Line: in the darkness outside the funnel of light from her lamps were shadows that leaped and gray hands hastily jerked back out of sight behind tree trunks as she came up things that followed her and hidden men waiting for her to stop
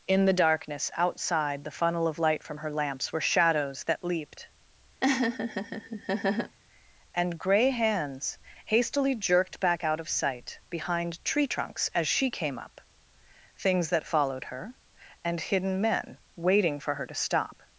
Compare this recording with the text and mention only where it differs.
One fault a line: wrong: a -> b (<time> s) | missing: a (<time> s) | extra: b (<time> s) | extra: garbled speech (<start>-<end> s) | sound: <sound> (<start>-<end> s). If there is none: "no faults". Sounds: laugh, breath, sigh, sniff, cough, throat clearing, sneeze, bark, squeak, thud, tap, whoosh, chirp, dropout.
sound: laugh (5.0-6.6 s)